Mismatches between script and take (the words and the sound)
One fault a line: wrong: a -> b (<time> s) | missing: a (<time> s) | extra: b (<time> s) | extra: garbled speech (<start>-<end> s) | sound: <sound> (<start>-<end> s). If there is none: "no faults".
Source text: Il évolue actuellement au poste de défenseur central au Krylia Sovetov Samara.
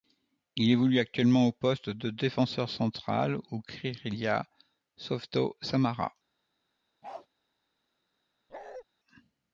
sound: bark (7.0-7.3 s)
sound: bark (8.5-8.8 s)